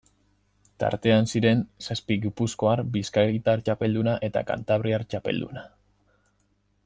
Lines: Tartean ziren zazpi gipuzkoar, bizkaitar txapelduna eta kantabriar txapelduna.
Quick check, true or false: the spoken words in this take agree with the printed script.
true